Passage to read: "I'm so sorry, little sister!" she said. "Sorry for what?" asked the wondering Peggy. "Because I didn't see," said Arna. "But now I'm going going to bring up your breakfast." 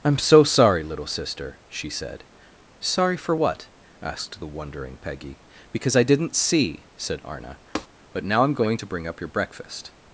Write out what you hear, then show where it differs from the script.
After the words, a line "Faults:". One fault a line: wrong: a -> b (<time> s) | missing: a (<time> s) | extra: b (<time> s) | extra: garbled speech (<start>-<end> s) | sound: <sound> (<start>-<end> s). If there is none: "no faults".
"I'm so sorry, little sister!" she said. "Sorry for what?" asked the wondering Peggy. "Because I didn't see," said Arna. "But now I'm going to bring up your breakfast."
Faults:
sound: tap (7.8-7.9 s)
missing: going (8.8 s)